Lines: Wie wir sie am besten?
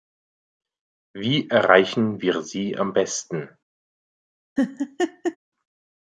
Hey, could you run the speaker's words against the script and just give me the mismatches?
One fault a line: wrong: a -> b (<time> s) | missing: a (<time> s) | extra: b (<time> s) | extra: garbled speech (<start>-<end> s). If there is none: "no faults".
extra: erreichen (1.5 s)